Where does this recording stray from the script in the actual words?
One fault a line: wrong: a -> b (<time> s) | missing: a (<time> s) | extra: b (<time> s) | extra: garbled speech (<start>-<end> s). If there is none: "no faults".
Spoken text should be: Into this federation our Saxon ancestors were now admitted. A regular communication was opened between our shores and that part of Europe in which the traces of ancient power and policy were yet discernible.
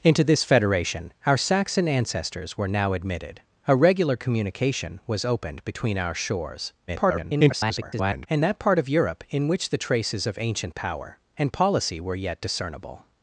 extra: garbled speech (6.9-8.3 s)